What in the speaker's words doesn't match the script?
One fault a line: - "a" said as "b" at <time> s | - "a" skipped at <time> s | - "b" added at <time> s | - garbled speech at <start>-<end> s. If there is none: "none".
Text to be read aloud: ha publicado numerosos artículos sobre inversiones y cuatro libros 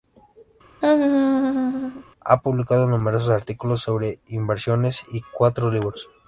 none